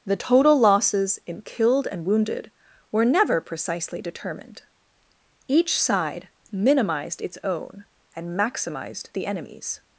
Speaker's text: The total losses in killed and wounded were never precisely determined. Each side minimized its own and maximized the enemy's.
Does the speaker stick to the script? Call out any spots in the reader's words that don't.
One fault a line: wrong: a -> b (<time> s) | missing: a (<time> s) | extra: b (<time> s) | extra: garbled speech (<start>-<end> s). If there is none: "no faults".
no faults